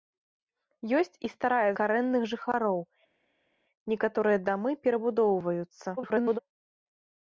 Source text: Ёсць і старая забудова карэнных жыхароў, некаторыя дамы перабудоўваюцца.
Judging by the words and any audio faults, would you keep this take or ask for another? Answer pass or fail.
fail